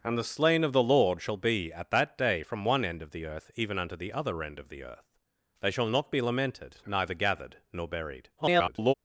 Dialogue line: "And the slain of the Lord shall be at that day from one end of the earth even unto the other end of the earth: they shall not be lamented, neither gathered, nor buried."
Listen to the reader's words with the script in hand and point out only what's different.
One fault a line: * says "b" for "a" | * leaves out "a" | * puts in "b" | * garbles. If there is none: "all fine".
* garbles